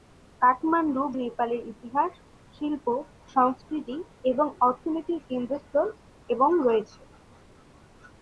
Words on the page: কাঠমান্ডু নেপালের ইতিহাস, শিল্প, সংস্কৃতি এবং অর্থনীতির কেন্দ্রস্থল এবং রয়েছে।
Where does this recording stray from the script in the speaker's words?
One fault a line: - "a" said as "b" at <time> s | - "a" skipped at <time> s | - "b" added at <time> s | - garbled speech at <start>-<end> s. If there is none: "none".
none